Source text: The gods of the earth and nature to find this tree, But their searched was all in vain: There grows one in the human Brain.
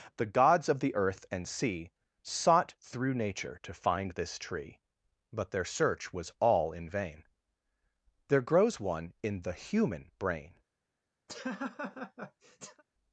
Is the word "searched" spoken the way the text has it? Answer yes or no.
no